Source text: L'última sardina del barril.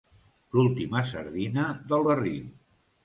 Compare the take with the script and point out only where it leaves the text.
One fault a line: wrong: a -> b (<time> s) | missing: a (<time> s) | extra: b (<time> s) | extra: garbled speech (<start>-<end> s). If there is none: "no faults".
no faults